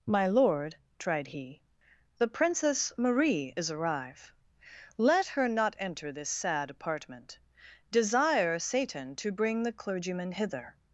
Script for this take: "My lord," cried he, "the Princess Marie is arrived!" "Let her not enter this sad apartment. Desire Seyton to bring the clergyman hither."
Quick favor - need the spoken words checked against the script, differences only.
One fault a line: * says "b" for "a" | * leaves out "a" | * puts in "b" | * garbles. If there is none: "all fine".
* says "tried" for "cried"
* says "arrive" for "arrived"